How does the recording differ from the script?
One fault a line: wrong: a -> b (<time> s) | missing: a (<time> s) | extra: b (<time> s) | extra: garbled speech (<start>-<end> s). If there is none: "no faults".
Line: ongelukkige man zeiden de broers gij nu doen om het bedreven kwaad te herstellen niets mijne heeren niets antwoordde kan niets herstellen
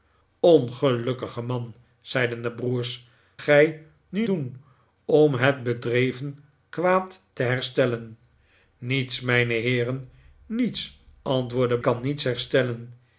no faults